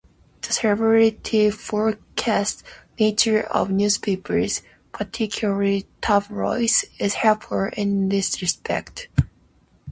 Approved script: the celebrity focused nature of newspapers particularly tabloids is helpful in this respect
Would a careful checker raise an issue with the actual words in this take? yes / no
no